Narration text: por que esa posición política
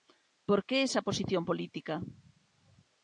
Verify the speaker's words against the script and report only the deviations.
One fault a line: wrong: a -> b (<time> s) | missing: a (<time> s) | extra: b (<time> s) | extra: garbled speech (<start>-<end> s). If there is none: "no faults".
no faults